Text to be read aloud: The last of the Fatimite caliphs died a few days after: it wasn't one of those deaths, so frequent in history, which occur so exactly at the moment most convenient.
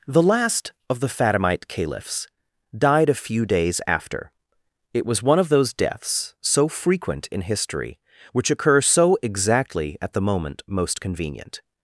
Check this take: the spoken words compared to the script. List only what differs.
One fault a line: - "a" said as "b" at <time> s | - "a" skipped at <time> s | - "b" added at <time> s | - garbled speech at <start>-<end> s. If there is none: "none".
- "wasn't" said as "was" at 5.0 s